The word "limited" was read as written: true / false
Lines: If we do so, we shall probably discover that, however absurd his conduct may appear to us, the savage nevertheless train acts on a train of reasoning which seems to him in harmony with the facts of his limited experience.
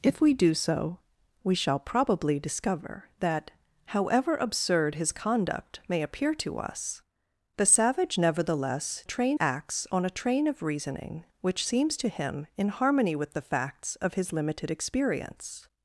true